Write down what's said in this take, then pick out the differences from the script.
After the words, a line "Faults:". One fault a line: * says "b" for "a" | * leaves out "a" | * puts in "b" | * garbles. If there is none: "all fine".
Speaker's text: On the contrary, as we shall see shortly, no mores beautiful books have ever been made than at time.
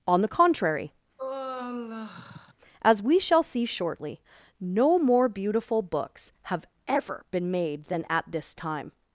On the contrary, as we shall see shortly, no more beautiful books have ever been made than at this time.
Faults:
* says "more" for "mores"
* puts in "this"